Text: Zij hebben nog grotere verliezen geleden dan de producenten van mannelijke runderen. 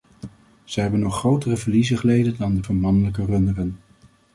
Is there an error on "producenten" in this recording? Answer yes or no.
yes